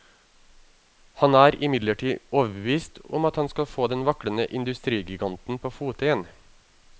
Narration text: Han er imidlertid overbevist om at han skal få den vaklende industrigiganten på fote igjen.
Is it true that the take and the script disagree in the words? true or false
false